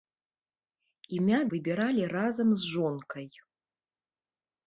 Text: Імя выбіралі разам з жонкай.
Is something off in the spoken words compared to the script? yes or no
no